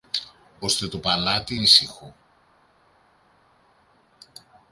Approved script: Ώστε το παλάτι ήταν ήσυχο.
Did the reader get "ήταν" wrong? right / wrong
wrong